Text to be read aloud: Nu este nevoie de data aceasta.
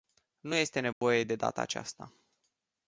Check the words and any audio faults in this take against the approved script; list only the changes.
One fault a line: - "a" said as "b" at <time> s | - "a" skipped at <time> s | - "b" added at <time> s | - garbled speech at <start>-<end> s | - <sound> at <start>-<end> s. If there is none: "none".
- dropout at 0.9-1.0 s